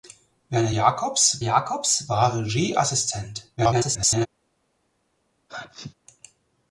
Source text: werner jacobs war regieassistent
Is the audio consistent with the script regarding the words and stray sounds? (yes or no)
no